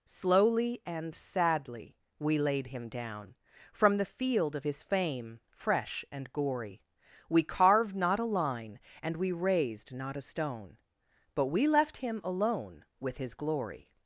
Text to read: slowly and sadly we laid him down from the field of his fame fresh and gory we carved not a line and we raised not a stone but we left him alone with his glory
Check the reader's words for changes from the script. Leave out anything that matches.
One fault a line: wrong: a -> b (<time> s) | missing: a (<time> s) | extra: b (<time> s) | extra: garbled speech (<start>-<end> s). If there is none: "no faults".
no faults